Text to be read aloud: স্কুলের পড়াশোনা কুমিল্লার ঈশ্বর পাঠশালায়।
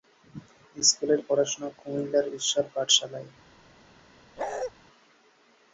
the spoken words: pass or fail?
pass